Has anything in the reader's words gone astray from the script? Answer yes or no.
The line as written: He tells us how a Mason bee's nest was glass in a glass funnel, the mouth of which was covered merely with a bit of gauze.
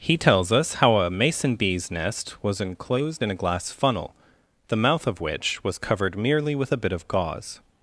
yes